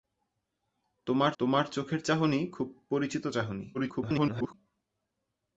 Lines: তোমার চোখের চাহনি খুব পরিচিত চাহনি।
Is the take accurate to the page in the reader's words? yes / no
no